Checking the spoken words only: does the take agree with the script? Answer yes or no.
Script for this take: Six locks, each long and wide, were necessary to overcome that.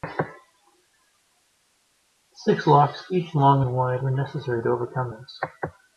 no